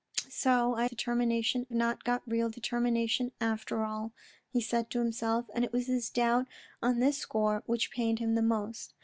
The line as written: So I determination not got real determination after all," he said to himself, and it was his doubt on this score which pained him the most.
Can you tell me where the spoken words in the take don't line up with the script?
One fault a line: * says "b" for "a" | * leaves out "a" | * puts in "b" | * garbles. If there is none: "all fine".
all fine